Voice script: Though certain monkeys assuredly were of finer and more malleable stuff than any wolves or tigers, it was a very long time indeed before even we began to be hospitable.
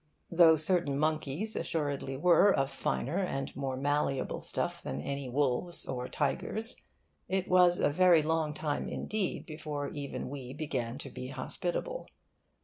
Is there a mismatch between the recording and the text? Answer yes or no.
no